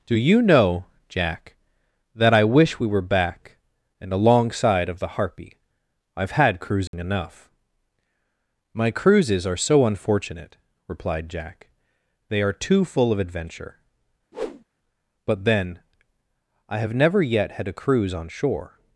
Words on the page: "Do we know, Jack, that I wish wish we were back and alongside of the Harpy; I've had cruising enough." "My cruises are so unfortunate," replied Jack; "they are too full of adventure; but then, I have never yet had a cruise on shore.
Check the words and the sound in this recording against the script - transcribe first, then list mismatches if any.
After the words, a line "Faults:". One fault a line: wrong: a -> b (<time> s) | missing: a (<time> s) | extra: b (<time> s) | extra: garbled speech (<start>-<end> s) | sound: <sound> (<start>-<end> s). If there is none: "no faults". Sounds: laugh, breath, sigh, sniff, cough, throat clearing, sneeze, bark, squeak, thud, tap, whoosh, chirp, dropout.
"Do you know, Jack, that I wish we were back and alongside of the Harpy; I've had cruising enough." "My cruises are so unfortunate," replied Jack; "they are too full of adventure; but then, I have never yet had a cruise on shore.
Faults:
wrong: we -> you (0.1 s)
missing: wish (2.8 s)
sound: dropout (6.9-6.9 s)
sound: whoosh (14.3-14.6 s)